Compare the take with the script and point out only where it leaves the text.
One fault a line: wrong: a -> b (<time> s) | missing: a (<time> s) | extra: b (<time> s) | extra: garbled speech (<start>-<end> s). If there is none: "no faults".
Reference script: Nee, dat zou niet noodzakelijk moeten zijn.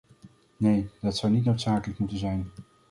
no faults